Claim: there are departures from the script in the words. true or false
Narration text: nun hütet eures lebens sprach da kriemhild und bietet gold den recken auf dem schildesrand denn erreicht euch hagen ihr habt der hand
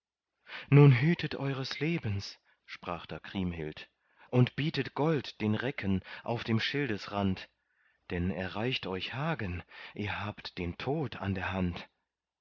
true